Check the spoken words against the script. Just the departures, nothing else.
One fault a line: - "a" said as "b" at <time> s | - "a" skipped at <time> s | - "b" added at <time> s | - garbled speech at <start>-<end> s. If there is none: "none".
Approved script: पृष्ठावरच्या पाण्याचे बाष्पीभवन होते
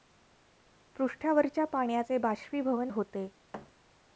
none